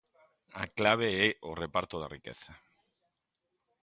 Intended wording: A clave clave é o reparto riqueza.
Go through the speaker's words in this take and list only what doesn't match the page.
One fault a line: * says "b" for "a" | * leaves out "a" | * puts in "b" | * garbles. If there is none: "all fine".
* leaves out "clave"
* puts in "da"